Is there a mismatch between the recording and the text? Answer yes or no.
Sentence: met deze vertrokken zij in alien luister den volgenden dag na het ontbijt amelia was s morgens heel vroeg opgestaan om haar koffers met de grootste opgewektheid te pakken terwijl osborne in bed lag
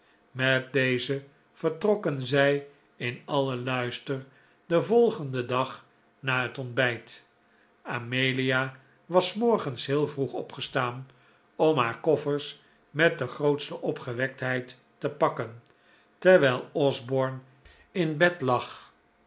no